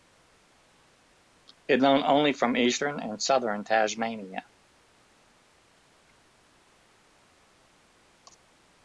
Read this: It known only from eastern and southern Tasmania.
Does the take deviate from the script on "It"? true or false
false